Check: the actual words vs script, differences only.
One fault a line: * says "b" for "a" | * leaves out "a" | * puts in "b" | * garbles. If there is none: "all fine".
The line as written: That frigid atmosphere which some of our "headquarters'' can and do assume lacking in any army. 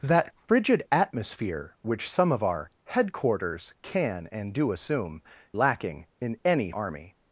all fine